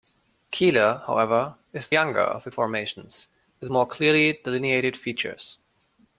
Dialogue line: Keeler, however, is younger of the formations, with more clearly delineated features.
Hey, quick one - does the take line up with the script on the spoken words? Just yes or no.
yes